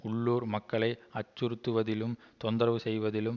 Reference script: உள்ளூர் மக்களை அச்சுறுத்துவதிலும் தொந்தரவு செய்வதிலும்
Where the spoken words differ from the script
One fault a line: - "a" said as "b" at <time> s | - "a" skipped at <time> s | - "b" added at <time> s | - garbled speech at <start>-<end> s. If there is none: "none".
none